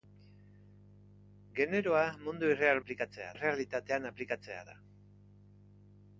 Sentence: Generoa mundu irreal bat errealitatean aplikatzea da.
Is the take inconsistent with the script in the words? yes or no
yes